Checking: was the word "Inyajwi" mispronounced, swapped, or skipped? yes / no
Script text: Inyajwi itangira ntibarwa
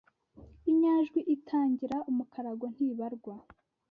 no